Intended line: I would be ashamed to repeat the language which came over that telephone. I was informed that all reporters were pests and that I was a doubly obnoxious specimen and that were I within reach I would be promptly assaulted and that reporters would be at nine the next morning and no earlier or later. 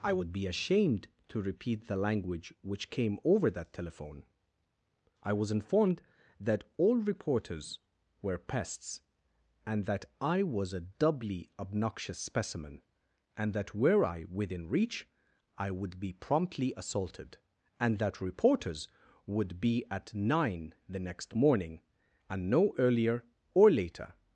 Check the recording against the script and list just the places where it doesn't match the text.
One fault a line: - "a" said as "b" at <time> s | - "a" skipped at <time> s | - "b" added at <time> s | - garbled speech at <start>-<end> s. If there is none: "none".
none